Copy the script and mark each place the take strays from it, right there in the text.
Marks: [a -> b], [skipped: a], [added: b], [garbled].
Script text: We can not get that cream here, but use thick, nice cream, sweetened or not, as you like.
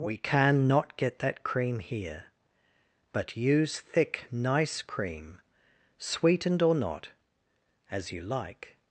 We can not get that cream here, but use thick, nice cream, sweetened or not, as you like.